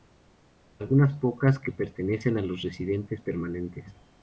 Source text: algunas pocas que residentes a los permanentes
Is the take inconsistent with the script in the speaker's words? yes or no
yes